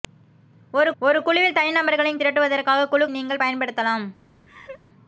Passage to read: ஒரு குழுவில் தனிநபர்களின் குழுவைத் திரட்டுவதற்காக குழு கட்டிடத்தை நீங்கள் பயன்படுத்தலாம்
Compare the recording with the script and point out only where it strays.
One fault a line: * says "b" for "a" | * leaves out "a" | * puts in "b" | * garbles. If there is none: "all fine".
* puts in "ஒரு"
* leaves out "குழுவைத்"
* leaves out "கட்டிடத்தை"